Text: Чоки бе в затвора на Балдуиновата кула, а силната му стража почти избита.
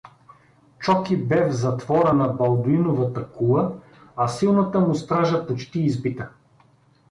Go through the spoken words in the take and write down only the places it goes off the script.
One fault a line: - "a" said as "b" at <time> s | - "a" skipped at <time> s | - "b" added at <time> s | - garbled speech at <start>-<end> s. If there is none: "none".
none